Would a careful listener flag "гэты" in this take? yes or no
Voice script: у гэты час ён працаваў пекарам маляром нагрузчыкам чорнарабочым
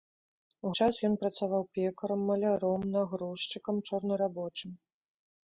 yes